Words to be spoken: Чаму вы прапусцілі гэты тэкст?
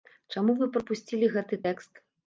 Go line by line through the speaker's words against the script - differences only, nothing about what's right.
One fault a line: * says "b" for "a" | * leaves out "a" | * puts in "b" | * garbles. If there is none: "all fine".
all fine